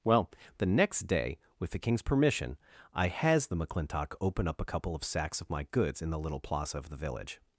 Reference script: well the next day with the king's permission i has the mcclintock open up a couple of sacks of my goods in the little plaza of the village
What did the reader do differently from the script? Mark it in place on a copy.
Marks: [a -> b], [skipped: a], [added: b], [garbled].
well the next day with the king's permission i has the mcclintock open up a couple of sacks of my goods in the little plaza of the village